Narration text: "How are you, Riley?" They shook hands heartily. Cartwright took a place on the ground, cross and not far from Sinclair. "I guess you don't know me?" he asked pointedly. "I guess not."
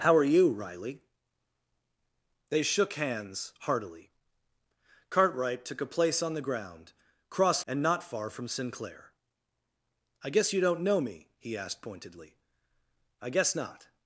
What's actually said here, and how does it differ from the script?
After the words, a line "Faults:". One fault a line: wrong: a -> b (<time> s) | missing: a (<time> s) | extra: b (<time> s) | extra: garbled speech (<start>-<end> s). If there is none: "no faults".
"How are you, Riley?" They shook hands heartily. Cartwright took a place on the ground, cross and not far from Sinclair. "I guess you don't know me?" he asked pointedly. "I guess not."
Faults:
no faults